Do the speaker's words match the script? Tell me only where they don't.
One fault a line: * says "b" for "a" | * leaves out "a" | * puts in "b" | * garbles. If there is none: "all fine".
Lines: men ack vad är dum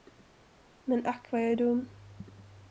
* puts in "jag"